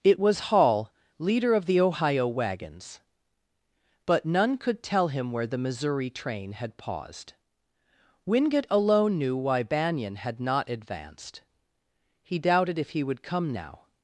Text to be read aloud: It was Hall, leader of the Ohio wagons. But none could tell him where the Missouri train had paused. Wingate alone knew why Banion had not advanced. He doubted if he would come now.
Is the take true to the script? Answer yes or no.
yes